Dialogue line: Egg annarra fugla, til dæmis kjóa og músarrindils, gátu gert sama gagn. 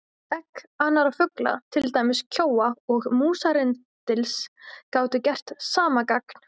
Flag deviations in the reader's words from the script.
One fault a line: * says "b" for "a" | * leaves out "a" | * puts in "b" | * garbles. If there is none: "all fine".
all fine